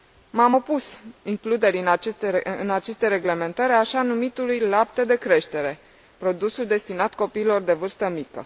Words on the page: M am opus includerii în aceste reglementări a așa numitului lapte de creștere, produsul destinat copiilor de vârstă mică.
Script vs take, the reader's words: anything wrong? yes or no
no